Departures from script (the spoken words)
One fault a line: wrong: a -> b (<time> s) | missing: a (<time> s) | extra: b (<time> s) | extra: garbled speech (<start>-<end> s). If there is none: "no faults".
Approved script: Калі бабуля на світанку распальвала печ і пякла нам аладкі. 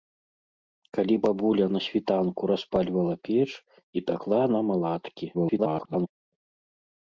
extra: garbled speech (5.3-6.1 s)